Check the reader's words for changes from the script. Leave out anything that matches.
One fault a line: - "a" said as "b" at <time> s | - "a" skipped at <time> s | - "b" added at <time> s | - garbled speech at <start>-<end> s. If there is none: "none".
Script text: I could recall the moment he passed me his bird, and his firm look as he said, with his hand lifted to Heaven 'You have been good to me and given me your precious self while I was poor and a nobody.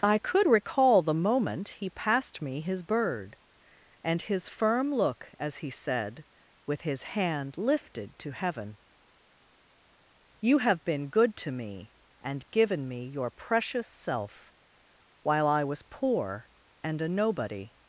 none